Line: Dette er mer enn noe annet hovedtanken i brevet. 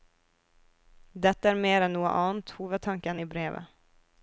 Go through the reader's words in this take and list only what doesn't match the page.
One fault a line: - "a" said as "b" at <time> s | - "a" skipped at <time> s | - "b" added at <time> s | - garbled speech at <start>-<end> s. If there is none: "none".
none